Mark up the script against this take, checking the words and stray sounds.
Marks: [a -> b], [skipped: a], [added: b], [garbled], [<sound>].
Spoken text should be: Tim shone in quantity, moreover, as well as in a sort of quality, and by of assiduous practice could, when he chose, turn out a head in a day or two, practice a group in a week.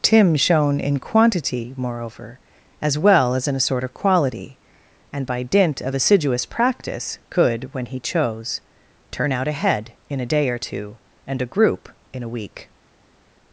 Tim shone in quantity, moreover, as well as in a sort of quality, and by [added: dint] of assiduous practice could, when he chose, turn out a head in a day or two, [practice -> and] a group in a week.